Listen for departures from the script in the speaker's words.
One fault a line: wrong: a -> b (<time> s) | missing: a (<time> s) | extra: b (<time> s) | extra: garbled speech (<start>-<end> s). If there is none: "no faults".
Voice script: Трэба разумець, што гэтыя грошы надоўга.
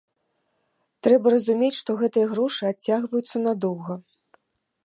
extra: адцягваюцца (2.7 s)